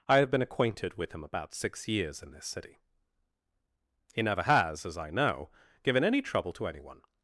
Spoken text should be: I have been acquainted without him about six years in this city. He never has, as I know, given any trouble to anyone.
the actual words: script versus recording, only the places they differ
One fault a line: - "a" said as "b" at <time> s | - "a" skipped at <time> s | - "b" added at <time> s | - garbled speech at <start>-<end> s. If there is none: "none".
- "without" said as "with" at 0.9 s